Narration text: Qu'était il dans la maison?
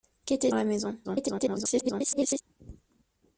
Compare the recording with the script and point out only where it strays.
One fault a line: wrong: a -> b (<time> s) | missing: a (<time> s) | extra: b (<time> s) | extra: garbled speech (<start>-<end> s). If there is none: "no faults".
missing: il dans (0.5 s)
extra: garbled speech (1.0-2.4 s)